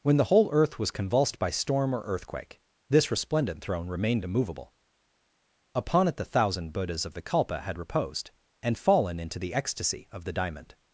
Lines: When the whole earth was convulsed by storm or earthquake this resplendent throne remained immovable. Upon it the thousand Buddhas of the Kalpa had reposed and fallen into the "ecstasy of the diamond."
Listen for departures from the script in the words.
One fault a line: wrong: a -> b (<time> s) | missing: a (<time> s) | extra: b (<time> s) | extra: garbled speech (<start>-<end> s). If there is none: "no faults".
no faults